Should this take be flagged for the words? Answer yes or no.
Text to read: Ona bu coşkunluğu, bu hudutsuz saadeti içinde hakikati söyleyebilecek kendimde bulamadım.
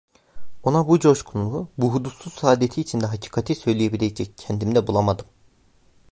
no